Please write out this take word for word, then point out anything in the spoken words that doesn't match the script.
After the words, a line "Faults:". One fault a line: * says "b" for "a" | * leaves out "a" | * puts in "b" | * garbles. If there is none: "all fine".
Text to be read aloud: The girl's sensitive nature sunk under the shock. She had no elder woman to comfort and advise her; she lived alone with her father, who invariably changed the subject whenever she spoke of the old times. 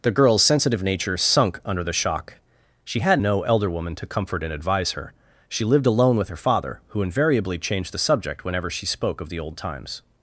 The girl's sensitive nature sunk under the shock. She had no elder woman to comfort and advise her; she lived alone with her father, who invariably changed the subject whenever she spoke of the old times.
Faults:
all fine